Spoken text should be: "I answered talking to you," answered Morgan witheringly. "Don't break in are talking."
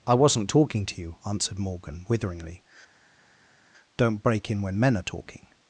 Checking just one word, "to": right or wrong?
right